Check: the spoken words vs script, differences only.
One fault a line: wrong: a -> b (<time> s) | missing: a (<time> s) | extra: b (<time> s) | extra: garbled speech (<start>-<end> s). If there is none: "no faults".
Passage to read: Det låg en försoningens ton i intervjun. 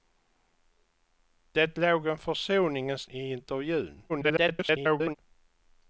missing: ton (3.1 s)
extra: garbled speech (4.1-5.2 s)